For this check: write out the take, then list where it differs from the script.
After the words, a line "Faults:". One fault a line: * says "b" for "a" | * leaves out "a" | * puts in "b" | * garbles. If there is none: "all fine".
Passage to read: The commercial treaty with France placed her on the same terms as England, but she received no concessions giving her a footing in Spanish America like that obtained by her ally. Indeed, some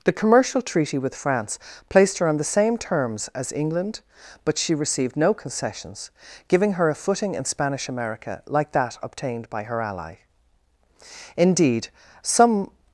The commercial treaty with France placed her on the same terms as England, but she received no concessions giving her a footing in Spanish America like that obtained by her ally. Indeed, some
Faults:
all fine